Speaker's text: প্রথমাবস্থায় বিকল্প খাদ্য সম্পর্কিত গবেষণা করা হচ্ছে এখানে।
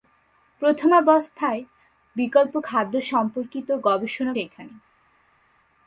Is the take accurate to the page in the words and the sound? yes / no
no